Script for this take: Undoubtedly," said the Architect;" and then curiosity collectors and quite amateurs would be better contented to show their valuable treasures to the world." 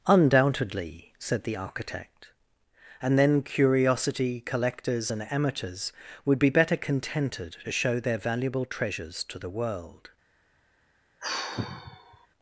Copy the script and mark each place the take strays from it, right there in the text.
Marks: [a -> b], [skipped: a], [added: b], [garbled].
Undoubtedly," said the Architect;" and then curiosity collectors and [skipped: quite] amateurs would be better contented to show their valuable treasures to the world."